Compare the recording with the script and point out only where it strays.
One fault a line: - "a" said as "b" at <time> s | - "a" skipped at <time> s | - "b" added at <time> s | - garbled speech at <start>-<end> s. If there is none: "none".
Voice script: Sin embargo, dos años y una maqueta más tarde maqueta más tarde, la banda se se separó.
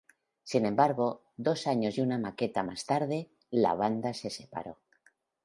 - "maqueta más tarde" skipped at 3.3 s
- "se" skipped at 4.3 s